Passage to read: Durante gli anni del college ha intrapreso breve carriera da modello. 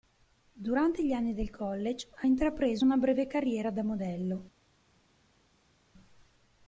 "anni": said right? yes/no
yes